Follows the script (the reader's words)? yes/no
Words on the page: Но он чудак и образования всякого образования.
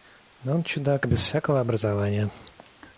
no